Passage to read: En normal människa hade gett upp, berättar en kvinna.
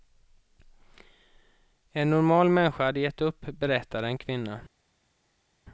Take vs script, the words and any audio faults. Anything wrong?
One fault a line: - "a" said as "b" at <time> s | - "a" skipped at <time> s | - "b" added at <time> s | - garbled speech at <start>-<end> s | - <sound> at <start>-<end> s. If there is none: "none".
none